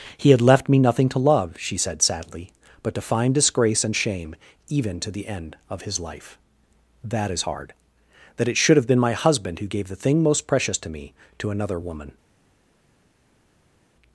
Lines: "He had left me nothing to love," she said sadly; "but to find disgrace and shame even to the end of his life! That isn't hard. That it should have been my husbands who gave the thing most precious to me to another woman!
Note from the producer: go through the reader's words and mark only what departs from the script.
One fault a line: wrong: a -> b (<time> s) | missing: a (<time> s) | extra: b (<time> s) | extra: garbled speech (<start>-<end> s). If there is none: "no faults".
wrong: isn't -> is (7.3 s)
wrong: husbands -> husband (9.1 s)